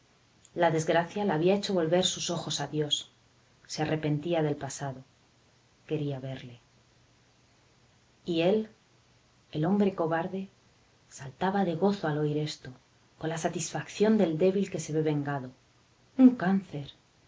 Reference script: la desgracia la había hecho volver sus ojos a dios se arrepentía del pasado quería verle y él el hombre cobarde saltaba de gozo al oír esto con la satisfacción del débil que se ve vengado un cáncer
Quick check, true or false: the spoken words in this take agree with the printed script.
true